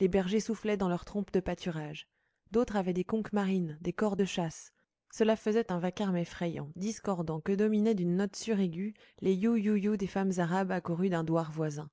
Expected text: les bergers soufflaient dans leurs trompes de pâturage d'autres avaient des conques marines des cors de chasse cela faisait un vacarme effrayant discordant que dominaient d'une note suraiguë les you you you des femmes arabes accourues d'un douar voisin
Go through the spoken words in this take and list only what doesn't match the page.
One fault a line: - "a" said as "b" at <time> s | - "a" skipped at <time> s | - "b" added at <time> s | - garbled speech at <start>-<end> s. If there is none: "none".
none